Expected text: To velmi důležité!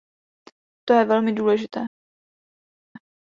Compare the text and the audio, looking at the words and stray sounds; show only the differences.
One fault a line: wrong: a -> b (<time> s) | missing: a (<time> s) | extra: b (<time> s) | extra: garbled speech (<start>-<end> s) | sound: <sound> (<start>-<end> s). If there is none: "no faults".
extra: je (0.9 s)